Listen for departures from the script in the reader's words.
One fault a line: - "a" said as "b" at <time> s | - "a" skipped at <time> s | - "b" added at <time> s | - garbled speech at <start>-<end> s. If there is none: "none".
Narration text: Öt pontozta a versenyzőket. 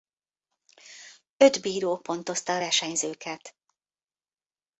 - "bíró" added at 1.6 s